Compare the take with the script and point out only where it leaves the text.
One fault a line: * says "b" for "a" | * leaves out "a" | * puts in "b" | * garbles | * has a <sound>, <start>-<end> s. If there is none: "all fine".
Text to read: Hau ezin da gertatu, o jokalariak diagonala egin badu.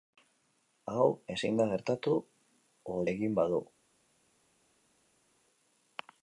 * leaves out "jokalariak diagonala"